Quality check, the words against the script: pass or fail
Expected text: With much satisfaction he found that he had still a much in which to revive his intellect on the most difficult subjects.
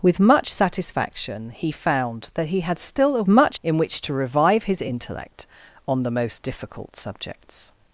pass